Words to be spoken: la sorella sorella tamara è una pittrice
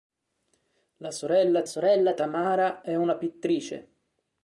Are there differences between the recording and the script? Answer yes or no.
no